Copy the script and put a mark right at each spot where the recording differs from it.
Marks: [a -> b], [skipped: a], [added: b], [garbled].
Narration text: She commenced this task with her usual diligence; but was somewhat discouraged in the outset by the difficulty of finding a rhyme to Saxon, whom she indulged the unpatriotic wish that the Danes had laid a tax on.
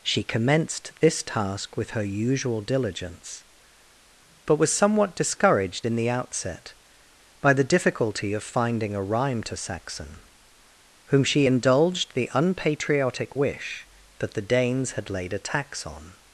She commenced this task with her usual diligence; but was somewhat discouraged in the outset by the difficulty of finding a rhyme to Saxon, whom she indulged the unpatriotic wish that the Danes had laid a tax on.